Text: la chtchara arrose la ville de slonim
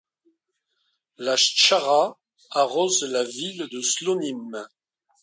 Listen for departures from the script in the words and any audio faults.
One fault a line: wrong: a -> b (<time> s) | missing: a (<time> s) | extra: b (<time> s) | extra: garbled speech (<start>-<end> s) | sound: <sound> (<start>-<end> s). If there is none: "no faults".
no faults